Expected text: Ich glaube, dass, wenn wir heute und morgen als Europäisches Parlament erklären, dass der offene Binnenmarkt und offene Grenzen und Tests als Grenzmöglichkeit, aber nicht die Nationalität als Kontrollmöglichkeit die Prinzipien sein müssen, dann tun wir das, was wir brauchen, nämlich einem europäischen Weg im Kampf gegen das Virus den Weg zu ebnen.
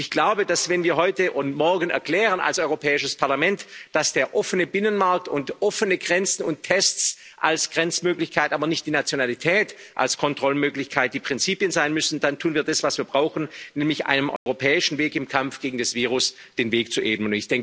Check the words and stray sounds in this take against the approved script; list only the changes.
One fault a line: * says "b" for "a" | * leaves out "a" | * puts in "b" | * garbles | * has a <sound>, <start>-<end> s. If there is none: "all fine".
* has a dropout, 14.4-14.5 s